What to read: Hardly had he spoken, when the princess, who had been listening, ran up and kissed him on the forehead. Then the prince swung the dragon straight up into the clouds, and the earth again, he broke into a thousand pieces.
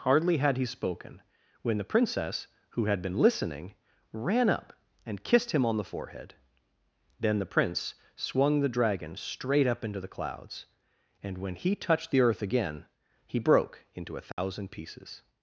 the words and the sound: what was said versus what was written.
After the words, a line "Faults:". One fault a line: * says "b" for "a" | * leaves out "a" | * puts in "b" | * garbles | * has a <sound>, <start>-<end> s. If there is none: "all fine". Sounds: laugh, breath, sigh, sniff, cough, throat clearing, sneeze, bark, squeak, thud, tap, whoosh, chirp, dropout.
Hardly had he spoken, when the princess, who had been listening, ran up and kissed him on the forehead. Then the prince swung the dragon straight up into the clouds, and when he touched the earth again, he broke into a thousand pieces.
Faults:
* puts in "when he touched"
* has a dropout, 14.3-14.4 s